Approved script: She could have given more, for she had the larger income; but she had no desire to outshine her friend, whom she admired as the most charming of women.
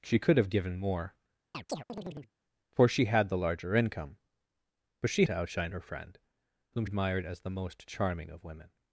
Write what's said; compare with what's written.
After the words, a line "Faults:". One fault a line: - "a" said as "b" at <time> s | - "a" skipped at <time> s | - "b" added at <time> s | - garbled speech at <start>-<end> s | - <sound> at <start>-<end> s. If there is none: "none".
She could have given more, for she had the larger income; but she to outshine her friend, whom admired as the most charming of women.
Faults:
- chirp at 1.5-2.3 s
- "had no desire" skipped at 5.3 s
- "she" skipped at 6.9 s